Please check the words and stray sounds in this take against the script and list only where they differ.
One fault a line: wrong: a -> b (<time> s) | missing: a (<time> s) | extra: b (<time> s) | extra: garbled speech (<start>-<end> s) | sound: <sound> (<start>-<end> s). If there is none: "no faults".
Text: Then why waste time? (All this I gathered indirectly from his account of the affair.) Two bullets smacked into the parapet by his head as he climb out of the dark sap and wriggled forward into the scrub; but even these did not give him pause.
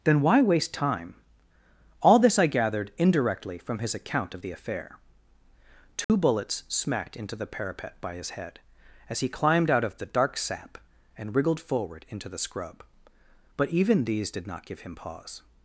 sound: dropout (6.0-6.1 s)
wrong: climb -> climbed (9.3 s)